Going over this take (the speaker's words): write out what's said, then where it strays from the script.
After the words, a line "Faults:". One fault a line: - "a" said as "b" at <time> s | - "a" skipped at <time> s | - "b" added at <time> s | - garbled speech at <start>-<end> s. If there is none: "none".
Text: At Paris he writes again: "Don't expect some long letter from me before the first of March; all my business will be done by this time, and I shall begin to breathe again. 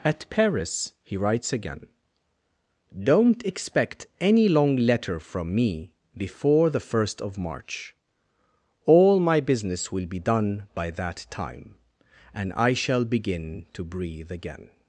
At Paris he writes again: "Don't expect any long letter from me before the first of March; all my business will be done by that time, and I shall begin to breathe again.
Faults:
- "some" said as "any" at 4.2 s
- "this" said as "that" at 10.9 s